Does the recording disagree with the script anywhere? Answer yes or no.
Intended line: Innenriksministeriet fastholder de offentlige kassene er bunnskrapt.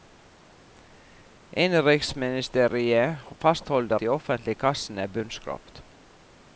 no